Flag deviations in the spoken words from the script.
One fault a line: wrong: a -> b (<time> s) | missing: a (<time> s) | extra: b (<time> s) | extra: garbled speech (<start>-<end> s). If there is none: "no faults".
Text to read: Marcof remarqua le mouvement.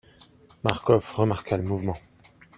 no faults